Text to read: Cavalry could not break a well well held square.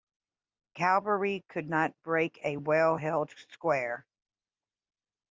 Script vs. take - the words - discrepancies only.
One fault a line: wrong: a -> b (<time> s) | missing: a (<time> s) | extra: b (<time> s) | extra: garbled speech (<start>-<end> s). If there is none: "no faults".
missing: well (3.0 s)